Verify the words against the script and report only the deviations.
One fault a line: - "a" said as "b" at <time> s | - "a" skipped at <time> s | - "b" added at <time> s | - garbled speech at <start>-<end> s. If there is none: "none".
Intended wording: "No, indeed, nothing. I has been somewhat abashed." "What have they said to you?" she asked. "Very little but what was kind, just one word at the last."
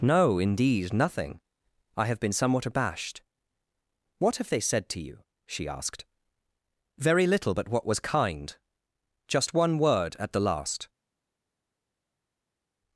- "has" said as "have" at 2.1 s